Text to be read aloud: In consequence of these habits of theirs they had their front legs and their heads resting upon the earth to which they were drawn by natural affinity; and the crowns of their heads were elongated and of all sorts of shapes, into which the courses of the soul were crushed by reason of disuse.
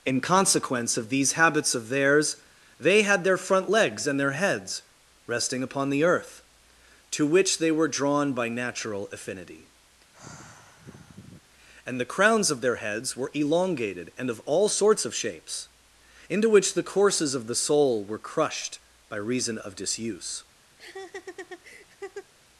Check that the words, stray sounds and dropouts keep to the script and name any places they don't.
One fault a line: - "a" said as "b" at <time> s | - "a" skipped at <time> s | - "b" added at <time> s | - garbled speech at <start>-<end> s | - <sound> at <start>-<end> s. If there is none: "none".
- sigh at 10.1-11.4 s
- laugh at 20.8-22.3 s